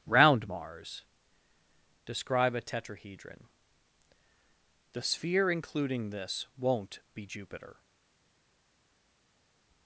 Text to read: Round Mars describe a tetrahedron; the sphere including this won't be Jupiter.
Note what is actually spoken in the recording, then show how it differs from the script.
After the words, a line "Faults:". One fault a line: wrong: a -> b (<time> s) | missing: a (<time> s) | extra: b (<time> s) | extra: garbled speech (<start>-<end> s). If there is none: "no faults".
Round Mars describe a tetrahedron; the sphere including this won't be Jupiter.
Faults:
no faults